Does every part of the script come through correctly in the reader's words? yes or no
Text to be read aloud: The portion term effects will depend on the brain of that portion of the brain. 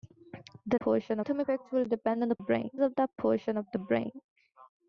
yes